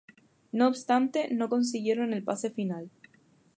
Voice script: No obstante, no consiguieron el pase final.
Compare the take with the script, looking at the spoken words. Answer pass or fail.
pass